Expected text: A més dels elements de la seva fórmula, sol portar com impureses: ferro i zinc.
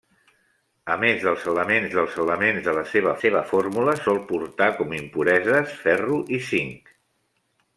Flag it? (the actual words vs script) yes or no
yes